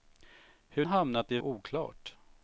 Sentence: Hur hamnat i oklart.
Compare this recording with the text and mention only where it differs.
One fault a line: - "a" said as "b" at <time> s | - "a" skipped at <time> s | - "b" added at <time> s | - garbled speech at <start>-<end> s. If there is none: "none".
none